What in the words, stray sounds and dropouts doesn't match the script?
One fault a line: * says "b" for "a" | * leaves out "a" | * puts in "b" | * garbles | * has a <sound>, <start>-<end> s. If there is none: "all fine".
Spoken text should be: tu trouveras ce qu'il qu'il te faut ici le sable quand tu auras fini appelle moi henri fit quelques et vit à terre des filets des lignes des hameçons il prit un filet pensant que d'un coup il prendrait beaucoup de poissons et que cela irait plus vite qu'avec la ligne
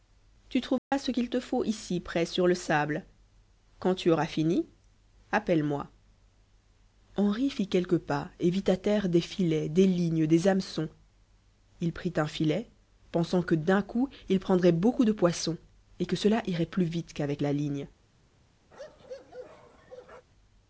* has a dropout, 0.8-0.9 s
* leaves out "qu'il"
* puts in "près sur"
* puts in "pas"
* has a bark, 18.7-20.3 s